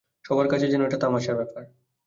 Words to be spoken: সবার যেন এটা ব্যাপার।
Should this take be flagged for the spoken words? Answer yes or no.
yes